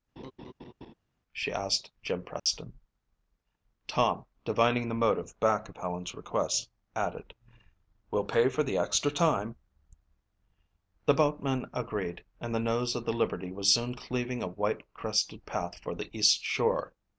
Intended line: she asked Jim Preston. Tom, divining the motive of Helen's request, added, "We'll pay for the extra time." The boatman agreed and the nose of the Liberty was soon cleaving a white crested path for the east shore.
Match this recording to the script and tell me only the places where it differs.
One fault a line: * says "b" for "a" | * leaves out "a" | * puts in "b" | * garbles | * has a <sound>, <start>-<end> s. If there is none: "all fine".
* has a laugh, 0.2-0.9 s
* has a dropout, 2.4-2.5 s
* puts in "back"